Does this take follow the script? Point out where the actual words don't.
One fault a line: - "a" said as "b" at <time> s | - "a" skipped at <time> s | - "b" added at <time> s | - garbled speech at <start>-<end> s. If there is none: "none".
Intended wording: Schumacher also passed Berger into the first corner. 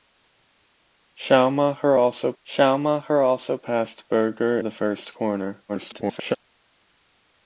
- "schumacher also" added at 2.4 s
- "into" skipped at 4.6 s
- garbled speech at 5.7-6.4 s